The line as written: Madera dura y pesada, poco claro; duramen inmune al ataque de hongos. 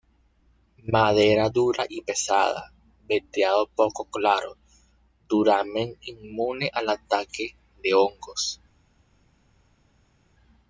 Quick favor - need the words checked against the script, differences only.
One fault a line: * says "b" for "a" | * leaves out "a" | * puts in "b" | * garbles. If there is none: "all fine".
* puts in "veteado"